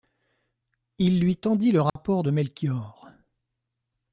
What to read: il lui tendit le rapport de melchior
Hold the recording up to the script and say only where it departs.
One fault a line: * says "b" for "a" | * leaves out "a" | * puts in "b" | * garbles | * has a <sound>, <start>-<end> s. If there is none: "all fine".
* has a dropout, 1.9-2.0 s